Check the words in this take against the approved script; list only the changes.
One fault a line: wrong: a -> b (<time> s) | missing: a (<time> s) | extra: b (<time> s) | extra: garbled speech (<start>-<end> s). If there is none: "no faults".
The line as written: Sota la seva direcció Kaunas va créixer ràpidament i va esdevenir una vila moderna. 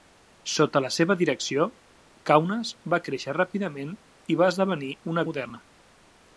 missing: vila (5.3 s)